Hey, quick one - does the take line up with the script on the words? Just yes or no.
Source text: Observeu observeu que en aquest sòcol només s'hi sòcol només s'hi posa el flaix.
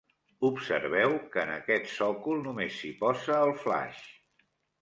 no